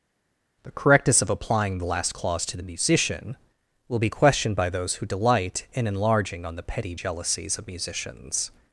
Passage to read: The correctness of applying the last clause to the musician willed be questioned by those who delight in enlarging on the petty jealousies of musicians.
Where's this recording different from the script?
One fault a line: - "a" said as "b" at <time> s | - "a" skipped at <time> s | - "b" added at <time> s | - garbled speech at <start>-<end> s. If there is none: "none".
- "willed" said as "will" at 3.9 s